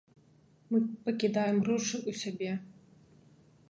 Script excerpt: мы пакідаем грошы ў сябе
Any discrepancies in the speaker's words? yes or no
no